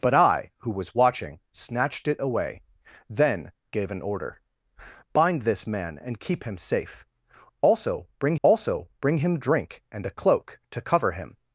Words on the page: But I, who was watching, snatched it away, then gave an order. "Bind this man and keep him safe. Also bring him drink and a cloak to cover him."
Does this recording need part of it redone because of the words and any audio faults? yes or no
yes